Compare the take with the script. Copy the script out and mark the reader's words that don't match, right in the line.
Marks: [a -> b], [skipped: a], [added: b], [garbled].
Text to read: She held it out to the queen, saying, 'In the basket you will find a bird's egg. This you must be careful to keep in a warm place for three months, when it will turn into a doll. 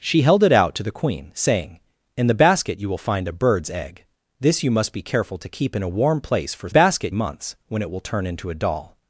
She held it out to the queen, saying, 'In the basket you will find a bird's egg. This you must be careful to keep in a warm place for [three -> basket] months, when it will turn into a doll.